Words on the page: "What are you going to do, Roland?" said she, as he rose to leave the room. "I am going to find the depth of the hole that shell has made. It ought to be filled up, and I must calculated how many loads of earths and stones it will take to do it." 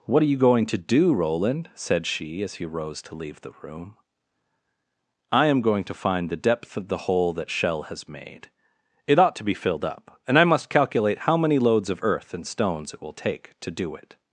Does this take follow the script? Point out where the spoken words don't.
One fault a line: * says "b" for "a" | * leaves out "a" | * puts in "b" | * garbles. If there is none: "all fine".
* says "calculate" for "calculated"
* says "earth" for "earths"